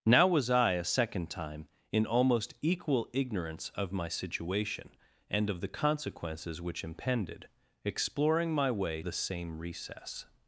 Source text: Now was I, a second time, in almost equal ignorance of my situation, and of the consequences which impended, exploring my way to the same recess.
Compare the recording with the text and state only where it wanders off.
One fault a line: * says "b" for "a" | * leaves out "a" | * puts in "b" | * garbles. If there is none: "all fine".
* leaves out "to"